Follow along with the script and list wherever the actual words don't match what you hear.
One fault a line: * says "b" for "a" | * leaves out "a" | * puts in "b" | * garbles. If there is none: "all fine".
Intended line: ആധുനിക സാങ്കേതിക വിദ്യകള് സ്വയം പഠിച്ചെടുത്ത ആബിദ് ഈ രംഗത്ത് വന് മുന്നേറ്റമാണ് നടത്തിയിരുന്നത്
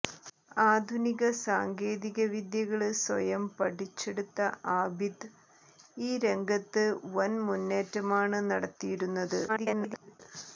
* garbles